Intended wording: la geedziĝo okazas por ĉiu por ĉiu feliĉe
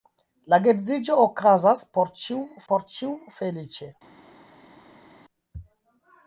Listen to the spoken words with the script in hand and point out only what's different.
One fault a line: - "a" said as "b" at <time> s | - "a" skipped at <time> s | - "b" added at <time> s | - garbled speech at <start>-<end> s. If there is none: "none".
none